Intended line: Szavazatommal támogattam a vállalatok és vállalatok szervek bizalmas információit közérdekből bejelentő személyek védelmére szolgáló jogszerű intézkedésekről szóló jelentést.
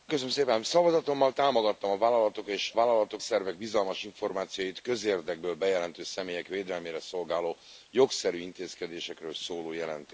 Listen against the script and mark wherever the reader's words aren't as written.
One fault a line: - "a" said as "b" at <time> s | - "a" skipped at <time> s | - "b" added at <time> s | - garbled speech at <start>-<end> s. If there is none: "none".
none